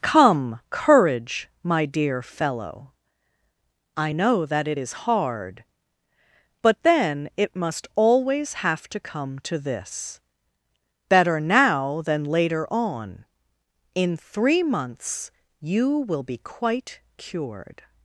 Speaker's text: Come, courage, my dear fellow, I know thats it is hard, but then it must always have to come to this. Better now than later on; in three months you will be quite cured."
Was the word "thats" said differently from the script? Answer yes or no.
yes